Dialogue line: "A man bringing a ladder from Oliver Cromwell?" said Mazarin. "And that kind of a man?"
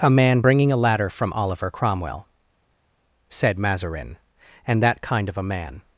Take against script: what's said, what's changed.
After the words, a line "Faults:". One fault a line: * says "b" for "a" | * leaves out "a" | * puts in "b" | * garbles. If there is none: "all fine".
"A man bringing a ladder from Oliver Cromwell?" said Mazarin. "And that kind of a man?"
Faults:
all fine